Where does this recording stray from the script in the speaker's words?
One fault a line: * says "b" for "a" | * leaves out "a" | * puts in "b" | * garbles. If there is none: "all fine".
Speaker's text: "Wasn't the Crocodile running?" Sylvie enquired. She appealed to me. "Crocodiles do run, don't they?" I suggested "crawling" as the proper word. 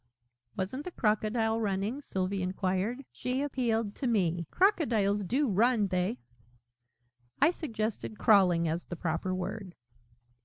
* leaves out "don't"